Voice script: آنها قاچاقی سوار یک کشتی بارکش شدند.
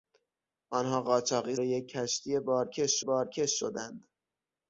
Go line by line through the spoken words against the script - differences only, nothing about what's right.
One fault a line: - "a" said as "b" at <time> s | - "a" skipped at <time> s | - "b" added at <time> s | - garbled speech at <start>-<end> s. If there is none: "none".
- "سوار" skipped at 1.6 s
- "بارکش" added at 3.0 s